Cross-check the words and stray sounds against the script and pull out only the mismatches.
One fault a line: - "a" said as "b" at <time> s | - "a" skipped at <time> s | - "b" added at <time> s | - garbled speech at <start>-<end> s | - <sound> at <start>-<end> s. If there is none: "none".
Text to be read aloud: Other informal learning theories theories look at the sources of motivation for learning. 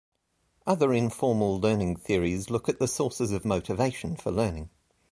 - "theories" skipped at 2.5 s